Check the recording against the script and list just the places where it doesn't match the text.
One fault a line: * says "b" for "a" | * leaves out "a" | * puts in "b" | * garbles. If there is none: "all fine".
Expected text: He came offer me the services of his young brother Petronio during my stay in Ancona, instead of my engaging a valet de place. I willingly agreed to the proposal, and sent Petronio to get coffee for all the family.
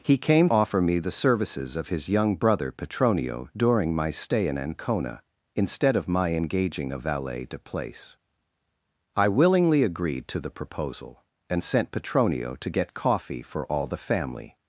all fine